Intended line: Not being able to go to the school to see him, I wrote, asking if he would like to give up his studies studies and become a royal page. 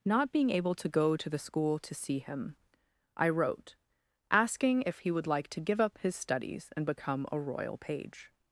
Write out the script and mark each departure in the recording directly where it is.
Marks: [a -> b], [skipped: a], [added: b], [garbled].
Not being able to go to the school to see him, I wrote, asking if he would like to give up his studies [skipped: studies] and become a royal page.